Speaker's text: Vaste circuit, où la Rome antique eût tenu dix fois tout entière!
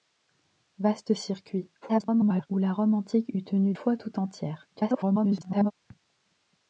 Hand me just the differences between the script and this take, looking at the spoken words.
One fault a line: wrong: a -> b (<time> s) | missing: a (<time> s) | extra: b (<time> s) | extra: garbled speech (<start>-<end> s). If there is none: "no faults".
extra: garbled speech (1.8-2.5 s)
missing: dix (3.8 s)
extra: garbled speech (4.7-5.7 s)